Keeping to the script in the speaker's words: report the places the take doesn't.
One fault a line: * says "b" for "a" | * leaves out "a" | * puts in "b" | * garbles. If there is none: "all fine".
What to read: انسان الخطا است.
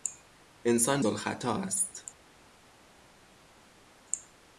all fine